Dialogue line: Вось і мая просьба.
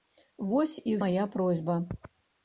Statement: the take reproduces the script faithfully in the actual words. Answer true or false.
true